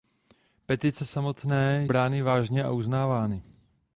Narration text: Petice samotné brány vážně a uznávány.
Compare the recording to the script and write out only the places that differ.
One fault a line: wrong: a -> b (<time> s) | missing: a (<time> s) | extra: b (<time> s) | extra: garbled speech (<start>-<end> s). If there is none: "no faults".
no faults